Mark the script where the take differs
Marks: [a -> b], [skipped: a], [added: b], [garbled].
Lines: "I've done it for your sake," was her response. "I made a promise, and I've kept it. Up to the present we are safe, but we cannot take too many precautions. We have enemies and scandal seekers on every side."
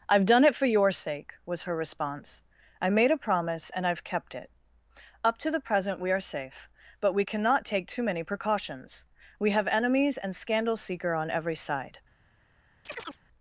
"I've done it for your sake," was her response. "I made a promise, and I've kept it. Up to the present we are safe, but we cannot take too many precautions. We have enemies and scandal [seekers -> seeker] on every side."